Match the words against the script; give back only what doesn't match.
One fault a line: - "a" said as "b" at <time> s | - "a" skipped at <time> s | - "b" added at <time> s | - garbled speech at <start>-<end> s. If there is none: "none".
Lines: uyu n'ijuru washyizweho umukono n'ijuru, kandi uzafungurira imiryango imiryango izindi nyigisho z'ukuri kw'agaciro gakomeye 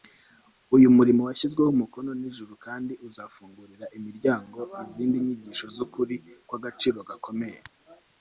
- "n'ijuru" said as "murimo" at 1.0 s
- "imiryango" skipped at 4.6 s